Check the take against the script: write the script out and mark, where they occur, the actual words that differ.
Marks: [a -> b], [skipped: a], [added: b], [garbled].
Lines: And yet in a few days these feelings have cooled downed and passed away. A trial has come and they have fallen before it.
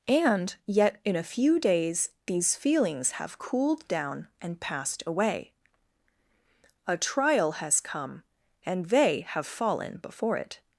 And yet in a few days these feelings have cooled [downed -> down] and passed away. A trial has come and they have fallen before it.